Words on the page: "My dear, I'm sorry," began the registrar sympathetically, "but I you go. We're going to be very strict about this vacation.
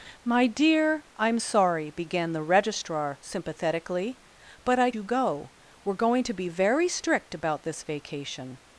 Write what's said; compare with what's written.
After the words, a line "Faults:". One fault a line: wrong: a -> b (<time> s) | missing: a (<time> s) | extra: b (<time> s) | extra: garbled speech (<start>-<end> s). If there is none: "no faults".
"My dear, I'm sorry," began the registrar sympathetically, "but I you go. We're going to be very strict about this vacation.
Faults:
no faults